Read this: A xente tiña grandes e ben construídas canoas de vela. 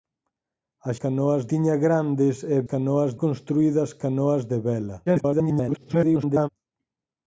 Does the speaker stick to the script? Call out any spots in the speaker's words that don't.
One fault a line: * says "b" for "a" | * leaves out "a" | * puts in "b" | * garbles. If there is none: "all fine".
* says "canoas" for "xente"
* says "canoas" for "ben"
* garbles